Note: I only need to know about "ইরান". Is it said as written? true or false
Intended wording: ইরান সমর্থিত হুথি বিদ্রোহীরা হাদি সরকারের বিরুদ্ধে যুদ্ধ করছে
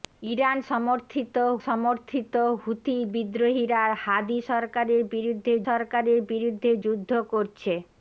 true